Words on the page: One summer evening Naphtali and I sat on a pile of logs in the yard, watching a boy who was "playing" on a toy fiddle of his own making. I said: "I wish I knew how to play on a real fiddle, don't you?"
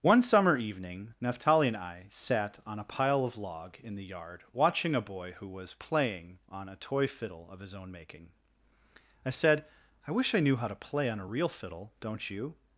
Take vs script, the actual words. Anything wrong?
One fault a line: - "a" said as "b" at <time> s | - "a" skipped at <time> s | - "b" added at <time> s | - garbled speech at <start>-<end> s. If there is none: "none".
- "logs" said as "log" at 3.4 s